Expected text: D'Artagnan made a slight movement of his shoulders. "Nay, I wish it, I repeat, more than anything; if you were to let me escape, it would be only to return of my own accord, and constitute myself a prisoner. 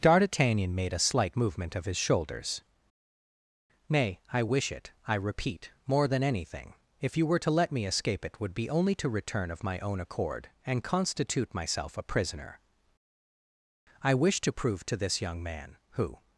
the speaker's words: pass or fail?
fail